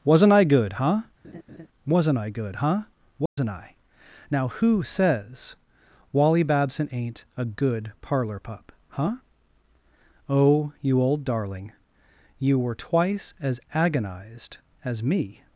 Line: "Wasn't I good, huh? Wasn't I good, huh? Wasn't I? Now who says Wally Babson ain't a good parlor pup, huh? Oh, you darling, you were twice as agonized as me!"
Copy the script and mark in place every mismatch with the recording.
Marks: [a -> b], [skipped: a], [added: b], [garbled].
"Wasn't I good, huh? Wasn't I good, huh? Wasn't I? Now who says Wally Babson ain't a good parlor pup, huh? Oh, you [added: old] darling, you were twice as agonized as me!"